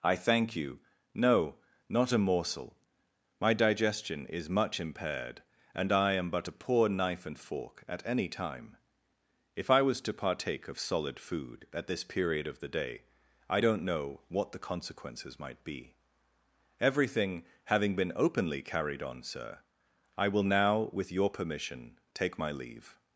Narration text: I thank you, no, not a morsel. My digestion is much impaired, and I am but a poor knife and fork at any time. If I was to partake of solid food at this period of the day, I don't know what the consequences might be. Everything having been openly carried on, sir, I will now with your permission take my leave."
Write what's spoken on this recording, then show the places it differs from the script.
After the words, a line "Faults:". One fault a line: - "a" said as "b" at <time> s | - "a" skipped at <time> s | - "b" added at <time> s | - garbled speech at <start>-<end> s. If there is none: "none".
I thank you, no, not a morsel. My digestion is much impaired, and I am but a poor knife and fork at any time. If I was to partake of solid food at this period of the day, I don't know what the consequences might be. Everything having been openly carried on, sir, I will now with your permission take my leave."
Faults:
none